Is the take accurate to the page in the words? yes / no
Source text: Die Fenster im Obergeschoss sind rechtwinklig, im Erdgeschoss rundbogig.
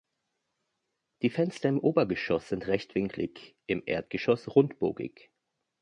yes